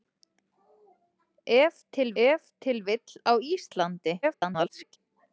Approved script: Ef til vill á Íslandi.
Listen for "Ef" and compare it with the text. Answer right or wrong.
right